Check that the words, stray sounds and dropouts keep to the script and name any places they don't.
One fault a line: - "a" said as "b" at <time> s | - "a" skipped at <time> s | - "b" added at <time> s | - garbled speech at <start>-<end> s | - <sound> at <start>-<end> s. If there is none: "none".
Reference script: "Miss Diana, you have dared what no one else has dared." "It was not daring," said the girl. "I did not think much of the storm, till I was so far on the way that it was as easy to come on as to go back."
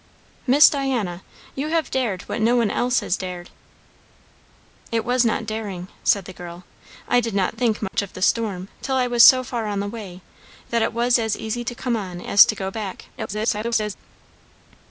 - dropout at 7.9-7.9 s
- garbled speech at 13.2-13.9 s